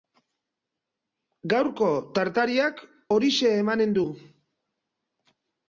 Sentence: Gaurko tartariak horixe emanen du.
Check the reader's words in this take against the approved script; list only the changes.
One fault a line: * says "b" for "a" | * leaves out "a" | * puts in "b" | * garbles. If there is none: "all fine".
all fine